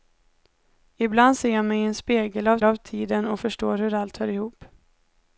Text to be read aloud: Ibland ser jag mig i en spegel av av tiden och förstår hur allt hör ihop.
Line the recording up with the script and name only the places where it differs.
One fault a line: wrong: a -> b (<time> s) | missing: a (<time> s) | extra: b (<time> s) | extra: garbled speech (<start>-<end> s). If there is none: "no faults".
no faults